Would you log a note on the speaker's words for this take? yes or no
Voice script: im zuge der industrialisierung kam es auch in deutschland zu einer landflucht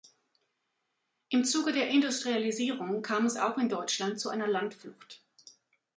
no